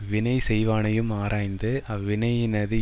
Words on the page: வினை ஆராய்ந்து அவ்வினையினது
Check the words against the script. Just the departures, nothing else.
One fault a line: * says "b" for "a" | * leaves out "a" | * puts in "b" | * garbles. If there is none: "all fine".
* puts in "செய்வானையும்"